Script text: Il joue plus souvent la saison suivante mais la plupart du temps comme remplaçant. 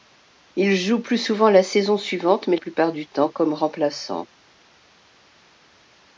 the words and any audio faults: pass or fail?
fail